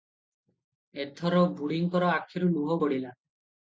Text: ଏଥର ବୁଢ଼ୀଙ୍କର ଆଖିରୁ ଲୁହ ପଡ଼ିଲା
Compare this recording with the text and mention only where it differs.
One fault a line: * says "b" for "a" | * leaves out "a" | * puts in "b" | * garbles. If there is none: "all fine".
all fine